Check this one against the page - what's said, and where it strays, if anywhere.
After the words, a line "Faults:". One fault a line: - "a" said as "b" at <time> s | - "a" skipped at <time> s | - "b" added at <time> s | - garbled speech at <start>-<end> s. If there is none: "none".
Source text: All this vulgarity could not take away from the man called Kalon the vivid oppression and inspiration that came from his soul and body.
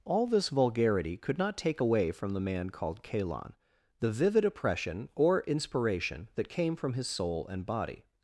All this vulgarity could not take away from the man called Kalon the vivid oppression or inspiration that came from his soul and body.
Faults:
- "and" said as "or" at 5.1 s